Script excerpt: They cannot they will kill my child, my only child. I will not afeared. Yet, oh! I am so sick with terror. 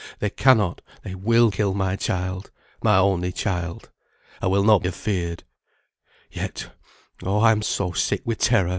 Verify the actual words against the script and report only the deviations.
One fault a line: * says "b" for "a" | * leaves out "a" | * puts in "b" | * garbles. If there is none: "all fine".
all fine